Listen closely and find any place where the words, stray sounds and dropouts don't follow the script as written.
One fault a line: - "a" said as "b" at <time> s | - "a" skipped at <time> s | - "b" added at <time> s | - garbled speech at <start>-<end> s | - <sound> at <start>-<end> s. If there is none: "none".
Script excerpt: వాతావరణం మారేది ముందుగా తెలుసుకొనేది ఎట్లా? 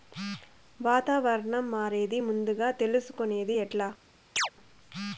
- chirp at 4.4-4.5 s